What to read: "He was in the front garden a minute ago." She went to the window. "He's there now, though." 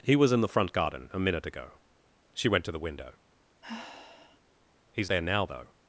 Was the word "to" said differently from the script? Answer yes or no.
no